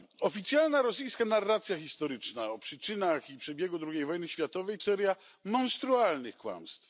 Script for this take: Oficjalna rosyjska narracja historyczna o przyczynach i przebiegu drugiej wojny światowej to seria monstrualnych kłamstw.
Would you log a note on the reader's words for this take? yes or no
yes